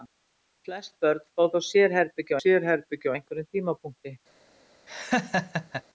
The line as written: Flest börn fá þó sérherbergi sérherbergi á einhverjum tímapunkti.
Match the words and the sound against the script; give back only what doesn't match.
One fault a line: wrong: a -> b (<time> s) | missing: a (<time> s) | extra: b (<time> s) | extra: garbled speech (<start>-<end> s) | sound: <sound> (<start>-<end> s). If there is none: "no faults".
sound: laugh (4.9-5.8 s)